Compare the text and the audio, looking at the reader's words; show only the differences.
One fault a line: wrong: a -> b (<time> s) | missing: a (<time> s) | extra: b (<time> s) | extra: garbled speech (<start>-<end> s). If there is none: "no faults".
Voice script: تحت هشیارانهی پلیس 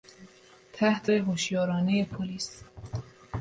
no faults